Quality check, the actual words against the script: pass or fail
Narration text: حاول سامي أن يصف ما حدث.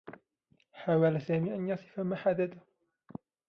pass